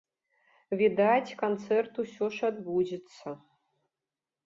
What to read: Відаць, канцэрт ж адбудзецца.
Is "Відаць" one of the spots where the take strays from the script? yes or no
no